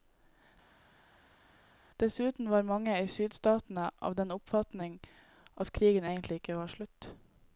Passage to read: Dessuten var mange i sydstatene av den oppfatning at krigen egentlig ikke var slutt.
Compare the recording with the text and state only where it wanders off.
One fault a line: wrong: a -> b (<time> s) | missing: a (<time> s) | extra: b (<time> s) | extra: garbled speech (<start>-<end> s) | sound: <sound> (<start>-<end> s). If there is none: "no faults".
no faults